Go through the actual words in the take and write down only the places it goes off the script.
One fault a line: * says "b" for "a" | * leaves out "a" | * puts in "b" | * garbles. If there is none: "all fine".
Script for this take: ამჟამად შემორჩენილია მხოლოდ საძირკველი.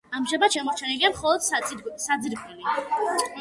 all fine